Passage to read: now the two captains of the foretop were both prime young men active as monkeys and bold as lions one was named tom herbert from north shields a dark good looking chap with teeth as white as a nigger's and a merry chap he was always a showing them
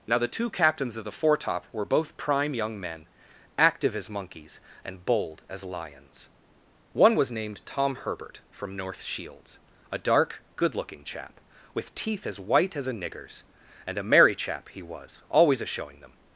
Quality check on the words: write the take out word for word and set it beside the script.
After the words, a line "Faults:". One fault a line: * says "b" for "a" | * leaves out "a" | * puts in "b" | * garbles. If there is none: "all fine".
now the two captains of the foretop were both prime young men active as monkeys and bold as lions one was named tom herbert from north shields a dark good looking chap with teeth as white as a nigger's and a merry chap he was always a showing them
Faults:
all fine